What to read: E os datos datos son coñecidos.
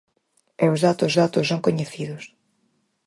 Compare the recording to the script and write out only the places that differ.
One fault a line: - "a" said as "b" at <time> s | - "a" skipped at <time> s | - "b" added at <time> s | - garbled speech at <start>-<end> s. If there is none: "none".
none